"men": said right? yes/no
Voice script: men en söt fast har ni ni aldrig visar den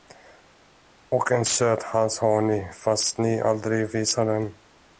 no